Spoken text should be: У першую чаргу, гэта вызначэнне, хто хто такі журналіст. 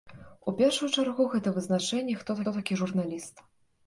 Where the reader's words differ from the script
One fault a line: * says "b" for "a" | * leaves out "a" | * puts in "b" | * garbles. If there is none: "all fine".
all fine